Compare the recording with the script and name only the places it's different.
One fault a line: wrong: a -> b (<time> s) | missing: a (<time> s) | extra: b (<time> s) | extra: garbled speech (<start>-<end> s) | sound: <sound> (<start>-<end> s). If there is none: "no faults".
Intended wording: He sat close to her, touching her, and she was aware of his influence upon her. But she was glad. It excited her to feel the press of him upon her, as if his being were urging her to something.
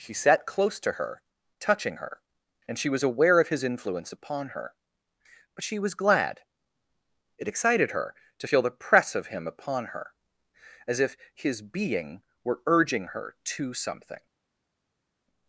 no faults